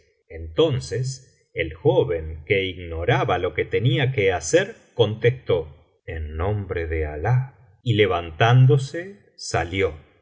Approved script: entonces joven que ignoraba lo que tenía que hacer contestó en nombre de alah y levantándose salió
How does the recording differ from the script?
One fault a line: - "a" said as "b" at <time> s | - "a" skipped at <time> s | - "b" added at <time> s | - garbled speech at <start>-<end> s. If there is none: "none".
- "el" added at 1.5 s